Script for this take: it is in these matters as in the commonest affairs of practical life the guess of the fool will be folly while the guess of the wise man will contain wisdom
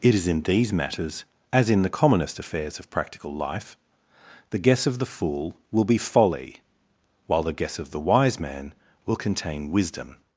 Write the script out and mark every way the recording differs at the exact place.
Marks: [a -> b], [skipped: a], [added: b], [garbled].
it is in these matters as in the commonest affairs of practical life the guess of the fool will be folly while the guess of the wise man will contain wisdom